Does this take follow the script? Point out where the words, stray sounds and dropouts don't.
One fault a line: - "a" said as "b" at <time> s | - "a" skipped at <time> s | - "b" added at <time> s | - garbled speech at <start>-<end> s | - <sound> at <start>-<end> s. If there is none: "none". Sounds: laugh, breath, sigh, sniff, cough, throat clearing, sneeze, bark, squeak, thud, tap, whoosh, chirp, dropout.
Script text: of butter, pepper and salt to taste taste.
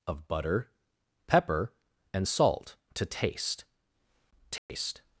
- dropout at 4.6-4.7 s